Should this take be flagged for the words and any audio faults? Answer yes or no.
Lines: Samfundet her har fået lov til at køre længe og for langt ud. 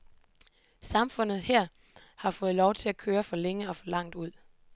yes